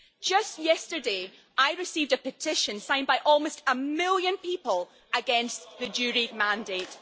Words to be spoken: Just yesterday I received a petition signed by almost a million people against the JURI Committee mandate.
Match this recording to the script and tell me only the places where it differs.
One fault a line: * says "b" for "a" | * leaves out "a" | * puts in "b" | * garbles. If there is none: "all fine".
* leaves out "Committee"